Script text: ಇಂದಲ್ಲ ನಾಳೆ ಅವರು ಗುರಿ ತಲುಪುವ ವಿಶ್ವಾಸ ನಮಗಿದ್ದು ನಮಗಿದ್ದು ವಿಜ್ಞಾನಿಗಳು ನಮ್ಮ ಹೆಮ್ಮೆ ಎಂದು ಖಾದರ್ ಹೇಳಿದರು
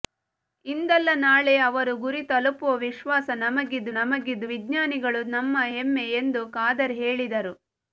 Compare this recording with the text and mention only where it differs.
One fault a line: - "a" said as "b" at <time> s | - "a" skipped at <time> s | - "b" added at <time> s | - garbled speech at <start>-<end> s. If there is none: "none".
none